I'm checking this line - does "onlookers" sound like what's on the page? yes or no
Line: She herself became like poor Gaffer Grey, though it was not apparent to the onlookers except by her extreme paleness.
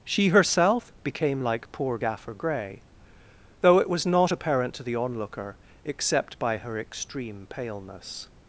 no